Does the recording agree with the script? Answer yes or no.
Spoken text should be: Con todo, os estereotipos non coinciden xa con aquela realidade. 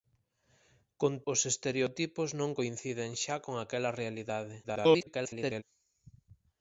no